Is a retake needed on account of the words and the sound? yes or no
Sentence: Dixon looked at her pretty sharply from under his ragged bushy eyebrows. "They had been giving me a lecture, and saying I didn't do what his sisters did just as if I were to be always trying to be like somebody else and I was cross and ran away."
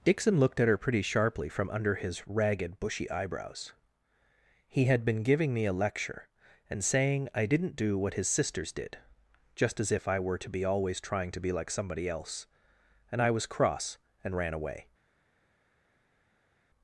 yes